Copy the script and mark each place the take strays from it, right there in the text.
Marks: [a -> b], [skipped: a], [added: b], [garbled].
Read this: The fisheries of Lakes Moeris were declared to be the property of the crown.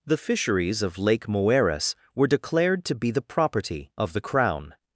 The fisheries of [Lakes -> Lake] Moeris were declared to be the property of the crown.